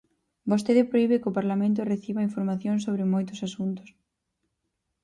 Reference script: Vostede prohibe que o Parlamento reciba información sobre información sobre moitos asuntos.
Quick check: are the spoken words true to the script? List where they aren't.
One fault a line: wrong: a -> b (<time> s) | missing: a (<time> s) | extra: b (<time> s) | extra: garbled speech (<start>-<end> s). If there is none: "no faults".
missing: información sobre (3.1 s)